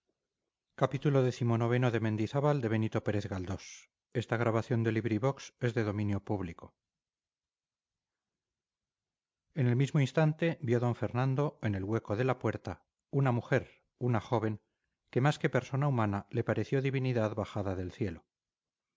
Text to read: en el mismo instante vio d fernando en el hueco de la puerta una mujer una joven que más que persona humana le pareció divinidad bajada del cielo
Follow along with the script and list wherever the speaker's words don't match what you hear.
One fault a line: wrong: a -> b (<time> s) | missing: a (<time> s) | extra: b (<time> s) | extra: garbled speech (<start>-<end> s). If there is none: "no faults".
no faults